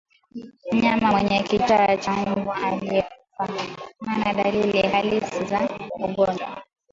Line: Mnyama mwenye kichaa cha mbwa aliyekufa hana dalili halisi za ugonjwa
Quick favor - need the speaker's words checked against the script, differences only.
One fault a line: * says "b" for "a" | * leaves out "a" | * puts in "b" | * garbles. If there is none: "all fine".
all fine